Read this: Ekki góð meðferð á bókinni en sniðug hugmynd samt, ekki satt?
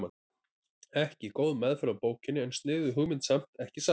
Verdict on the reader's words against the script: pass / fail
pass